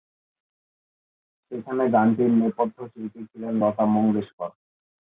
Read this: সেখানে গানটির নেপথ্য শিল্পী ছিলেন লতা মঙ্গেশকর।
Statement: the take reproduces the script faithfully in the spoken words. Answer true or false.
true